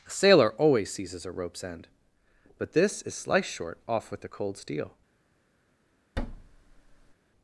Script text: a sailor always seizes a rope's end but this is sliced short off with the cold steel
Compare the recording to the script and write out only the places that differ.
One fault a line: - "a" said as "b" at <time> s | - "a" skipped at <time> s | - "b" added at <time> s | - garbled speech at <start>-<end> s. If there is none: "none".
none